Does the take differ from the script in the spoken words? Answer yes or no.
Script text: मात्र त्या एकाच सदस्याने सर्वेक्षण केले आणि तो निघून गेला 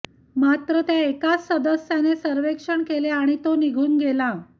no